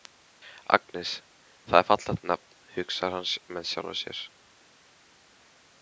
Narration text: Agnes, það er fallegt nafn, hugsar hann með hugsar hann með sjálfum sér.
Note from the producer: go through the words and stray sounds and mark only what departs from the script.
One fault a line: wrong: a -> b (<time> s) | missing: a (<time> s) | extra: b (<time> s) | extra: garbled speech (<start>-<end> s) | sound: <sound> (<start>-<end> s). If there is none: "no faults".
missing: hugsar hann með (3.7 s)